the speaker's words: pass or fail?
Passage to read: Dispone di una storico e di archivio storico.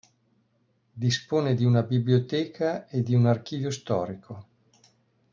fail